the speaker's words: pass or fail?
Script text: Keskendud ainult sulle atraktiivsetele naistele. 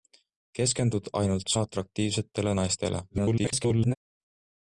fail